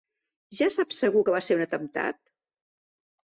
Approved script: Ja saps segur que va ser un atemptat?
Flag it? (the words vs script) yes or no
no